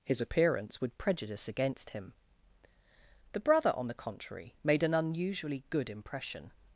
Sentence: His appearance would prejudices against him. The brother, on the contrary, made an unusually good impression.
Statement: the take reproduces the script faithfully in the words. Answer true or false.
false